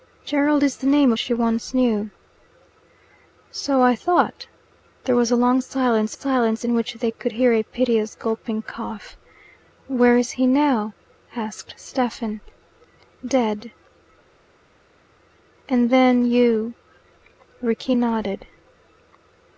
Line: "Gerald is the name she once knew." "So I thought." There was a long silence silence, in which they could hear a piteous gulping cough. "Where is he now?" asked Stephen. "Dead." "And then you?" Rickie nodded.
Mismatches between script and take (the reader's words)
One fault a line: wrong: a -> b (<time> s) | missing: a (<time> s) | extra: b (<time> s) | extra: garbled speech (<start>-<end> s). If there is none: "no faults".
no faults